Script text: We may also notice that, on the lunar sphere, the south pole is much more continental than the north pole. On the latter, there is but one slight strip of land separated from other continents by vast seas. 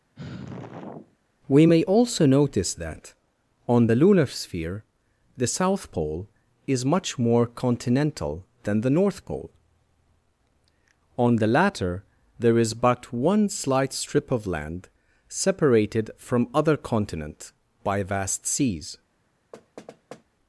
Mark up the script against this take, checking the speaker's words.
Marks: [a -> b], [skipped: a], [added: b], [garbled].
We may also notice that, on the lunar sphere, the south pole is much more continental than the north pole. On the latter, there is but one slight strip of land separated from other [continents -> continent] by vast seas.